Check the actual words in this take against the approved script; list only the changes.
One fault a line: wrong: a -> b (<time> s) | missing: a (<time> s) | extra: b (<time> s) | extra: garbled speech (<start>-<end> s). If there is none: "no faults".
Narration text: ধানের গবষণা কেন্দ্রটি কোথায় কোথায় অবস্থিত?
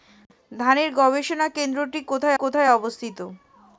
no faults